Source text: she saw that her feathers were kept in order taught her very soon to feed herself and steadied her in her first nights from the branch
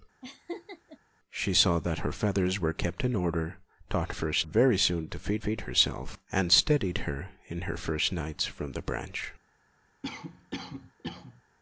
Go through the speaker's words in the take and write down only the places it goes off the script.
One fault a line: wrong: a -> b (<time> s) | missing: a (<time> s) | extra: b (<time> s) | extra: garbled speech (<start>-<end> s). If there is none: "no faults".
wrong: her -> first (4.1 s)
extra: feed (5.4 s)